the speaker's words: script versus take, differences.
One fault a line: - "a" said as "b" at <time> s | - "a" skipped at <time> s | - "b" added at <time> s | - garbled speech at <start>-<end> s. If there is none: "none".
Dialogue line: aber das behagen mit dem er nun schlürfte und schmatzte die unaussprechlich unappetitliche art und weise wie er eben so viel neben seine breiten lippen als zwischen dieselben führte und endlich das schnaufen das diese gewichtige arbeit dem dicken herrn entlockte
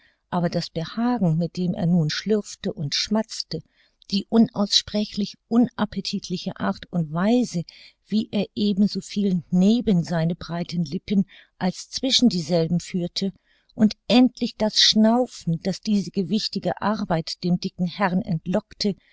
none